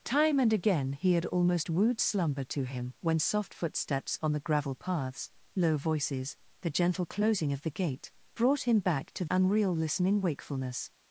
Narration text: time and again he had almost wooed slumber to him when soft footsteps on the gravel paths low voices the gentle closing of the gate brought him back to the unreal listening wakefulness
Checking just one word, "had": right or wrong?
right